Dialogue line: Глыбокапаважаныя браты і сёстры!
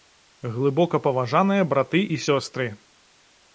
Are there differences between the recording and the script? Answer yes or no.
no